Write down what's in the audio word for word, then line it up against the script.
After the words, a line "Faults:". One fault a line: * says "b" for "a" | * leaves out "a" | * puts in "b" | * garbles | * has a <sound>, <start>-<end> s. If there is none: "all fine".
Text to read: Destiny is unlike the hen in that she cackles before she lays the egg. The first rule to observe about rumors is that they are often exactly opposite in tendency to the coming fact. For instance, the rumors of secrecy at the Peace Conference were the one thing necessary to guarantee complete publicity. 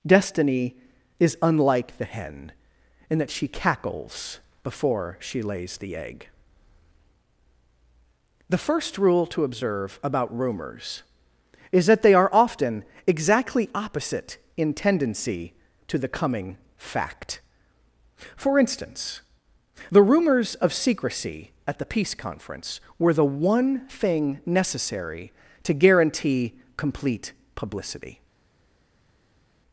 Destiny is unlike the hen in that she cackles before she lays the egg. The first rule to observe about rumors is that they are often exactly opposite in tendency to the coming fact. For instance, the rumors of secrecy at the Peace Conference were the one thing necessary to guarantee complete publicity.
Faults:
all fine